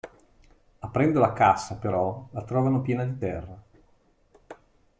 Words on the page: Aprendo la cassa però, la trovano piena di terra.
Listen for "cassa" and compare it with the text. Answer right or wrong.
right